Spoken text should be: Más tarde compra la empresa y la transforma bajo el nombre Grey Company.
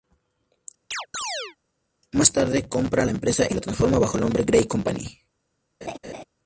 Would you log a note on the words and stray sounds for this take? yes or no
yes